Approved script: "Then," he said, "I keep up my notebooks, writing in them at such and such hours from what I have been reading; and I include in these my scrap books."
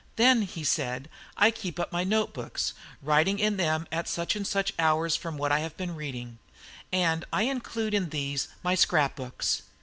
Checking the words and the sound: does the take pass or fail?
pass